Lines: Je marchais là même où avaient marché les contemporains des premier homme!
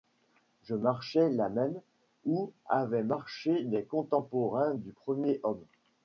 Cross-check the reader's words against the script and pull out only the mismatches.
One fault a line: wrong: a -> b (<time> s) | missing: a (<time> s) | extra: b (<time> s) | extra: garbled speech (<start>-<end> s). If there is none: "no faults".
wrong: des -> du (4.7 s)